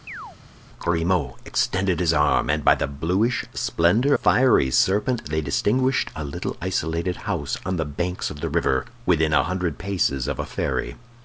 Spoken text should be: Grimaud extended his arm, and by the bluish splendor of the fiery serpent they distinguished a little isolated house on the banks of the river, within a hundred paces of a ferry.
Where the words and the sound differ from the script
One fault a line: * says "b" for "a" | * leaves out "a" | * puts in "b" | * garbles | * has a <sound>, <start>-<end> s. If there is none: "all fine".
* has a chirp, 0.1-0.4 s
* leaves out "of the"